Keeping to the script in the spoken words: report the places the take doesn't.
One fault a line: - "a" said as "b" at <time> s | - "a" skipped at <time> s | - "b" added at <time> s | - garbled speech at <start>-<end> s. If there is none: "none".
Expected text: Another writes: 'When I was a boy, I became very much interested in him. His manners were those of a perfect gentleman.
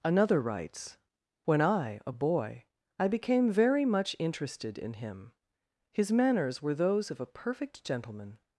- "was" skipped at 2.0 s